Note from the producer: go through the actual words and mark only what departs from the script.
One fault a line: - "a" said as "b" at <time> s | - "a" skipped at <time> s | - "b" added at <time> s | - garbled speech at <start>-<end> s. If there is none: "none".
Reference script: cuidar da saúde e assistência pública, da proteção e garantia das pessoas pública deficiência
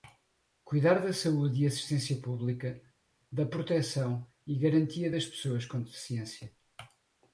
- "pública" said as "com" at 5.6 s